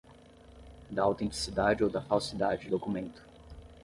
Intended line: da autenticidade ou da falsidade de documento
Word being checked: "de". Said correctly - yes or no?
no